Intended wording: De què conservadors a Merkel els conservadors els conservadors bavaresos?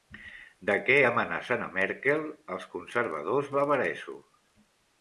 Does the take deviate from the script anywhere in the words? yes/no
yes